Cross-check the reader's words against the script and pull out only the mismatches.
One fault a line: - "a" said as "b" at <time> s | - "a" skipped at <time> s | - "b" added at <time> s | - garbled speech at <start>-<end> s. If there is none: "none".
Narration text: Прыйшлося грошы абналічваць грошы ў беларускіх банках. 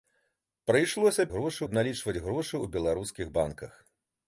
none